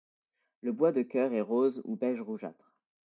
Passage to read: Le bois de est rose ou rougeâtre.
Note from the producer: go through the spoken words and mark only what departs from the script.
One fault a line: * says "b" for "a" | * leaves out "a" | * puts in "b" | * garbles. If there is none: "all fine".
* puts in "cœur"
* puts in "beige"